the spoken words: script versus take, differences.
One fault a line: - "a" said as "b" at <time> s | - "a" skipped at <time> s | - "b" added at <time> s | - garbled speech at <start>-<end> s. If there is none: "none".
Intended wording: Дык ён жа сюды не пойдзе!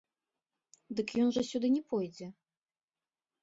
none